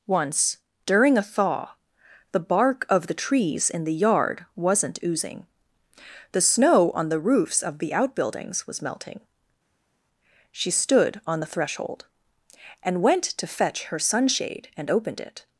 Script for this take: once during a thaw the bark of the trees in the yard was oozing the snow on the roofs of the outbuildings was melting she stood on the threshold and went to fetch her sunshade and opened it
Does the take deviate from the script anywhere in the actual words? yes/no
yes